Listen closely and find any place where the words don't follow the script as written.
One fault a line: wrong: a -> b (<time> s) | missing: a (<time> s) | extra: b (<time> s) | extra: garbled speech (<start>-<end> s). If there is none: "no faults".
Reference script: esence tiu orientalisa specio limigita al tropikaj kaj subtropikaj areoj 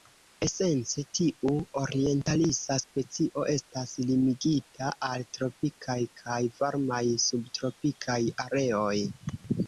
extra: estas (3.5 s)
extra: varmaj (6.6 s)